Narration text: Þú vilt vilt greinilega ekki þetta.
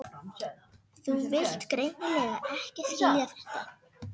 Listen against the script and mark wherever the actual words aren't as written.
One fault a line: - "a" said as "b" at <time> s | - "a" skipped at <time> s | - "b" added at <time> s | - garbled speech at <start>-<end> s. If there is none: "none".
- "vilt" skipped at 1.7 s
- "skilja" added at 2.9 s